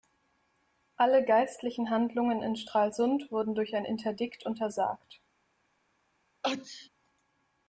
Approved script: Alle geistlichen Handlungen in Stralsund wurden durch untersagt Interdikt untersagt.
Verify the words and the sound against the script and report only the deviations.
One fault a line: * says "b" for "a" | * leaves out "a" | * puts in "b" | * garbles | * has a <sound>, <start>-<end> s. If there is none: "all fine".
* says "ein" for "untersagt"
* has a sneeze, 6.4-6.9 s